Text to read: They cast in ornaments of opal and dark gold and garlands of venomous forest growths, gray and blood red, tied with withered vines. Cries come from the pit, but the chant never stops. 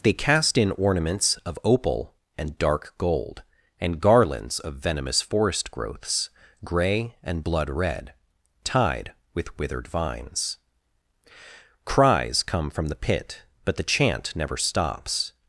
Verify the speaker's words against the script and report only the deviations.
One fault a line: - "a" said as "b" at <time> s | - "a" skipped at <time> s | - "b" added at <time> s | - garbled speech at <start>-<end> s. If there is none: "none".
none